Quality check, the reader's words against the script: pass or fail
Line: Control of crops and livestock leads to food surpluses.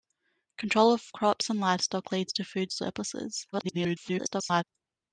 fail